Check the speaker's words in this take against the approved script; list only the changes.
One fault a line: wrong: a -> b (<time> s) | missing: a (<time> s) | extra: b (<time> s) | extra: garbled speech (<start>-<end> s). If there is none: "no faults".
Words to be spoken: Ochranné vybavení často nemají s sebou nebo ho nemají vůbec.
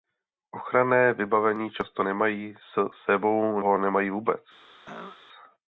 missing: nebo (3.6 s)